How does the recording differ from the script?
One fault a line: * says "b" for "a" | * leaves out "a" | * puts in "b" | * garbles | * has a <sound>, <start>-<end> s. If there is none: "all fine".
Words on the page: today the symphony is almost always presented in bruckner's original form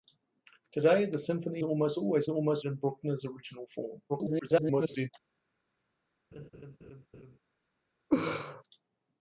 * leaves out "is"
* says "almost" for "presented"
* garbles
* has a laugh, 6.3-7.4 s
* has a laugh, 8.1-8.6 s